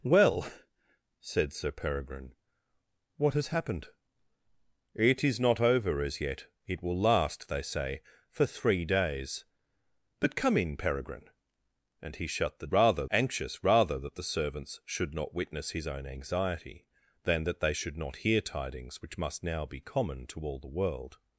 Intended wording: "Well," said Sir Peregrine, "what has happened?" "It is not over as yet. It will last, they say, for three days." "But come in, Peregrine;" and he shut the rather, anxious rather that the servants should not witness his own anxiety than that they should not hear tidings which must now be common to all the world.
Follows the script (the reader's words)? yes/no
yes